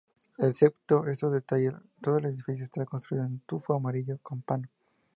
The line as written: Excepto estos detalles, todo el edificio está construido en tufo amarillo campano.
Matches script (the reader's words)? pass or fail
pass